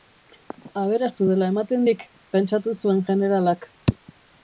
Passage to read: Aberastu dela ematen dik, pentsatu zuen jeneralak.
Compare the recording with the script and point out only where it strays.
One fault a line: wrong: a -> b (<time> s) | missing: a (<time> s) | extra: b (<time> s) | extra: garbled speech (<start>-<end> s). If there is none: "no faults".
no faults